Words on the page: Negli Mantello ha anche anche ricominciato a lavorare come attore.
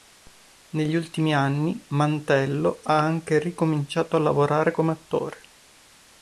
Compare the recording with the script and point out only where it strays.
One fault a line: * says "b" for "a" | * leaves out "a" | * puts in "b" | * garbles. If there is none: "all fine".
* puts in "ultimi anni"
* leaves out "anche"